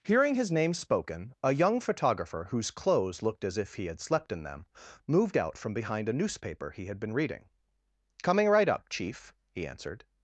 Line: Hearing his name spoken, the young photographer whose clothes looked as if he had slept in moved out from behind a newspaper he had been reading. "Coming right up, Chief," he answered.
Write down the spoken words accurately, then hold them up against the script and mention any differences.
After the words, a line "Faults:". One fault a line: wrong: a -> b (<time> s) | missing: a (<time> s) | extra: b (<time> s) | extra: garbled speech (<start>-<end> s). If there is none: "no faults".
Hearing his name spoken, a young photographer whose clothes looked as if he had slept in them, moved out from behind a newspaper he had been reading. "Coming right up, Chief," he answered.
Faults:
wrong: the -> a (1.4 s)
extra: them (4.4 s)